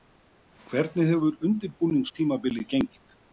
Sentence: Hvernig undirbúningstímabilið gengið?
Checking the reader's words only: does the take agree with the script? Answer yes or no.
no